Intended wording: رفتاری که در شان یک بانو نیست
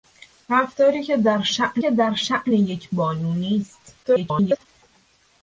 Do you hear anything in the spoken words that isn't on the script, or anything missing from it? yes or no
yes